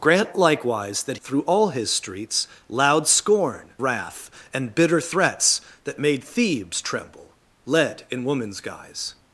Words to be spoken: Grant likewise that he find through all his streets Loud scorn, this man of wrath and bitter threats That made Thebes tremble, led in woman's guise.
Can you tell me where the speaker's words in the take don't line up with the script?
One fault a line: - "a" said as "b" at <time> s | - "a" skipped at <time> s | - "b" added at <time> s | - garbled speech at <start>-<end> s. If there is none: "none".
- "he find" skipped at 1.2 s
- "this man of" skipped at 3.7 s